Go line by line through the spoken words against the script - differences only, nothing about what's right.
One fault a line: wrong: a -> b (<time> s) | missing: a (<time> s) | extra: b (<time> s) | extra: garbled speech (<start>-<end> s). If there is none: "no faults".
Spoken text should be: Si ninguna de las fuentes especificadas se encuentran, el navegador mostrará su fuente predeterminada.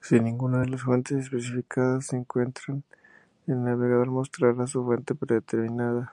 no faults